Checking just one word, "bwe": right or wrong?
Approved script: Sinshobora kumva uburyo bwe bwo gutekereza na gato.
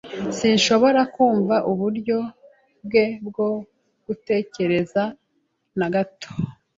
right